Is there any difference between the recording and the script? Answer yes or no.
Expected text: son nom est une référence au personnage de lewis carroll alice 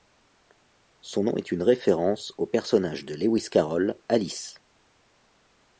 no